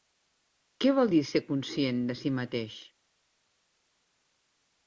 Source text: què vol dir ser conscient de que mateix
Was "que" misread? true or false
true